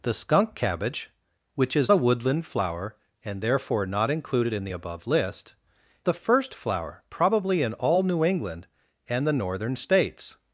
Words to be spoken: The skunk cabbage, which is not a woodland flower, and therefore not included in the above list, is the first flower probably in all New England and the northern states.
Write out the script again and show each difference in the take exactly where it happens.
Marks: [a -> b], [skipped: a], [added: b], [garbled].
The skunk cabbage, which is [skipped: not] a woodland flower, and therefore not included in the above list, [skipped: is] the first flower probably in all New England and the northern states.